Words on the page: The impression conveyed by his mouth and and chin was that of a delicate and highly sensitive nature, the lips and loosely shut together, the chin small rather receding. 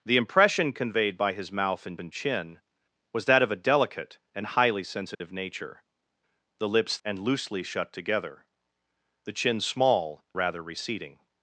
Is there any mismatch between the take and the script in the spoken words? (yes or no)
no